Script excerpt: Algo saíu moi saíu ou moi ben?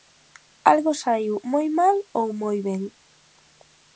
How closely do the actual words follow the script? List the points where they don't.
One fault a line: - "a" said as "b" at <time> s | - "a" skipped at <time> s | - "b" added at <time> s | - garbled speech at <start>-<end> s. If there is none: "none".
- "saíu" said as "mal" at 1.8 s